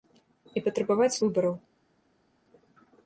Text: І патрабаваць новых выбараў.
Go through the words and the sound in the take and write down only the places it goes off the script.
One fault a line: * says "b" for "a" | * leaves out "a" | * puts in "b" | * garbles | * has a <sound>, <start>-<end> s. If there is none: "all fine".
* leaves out "новых"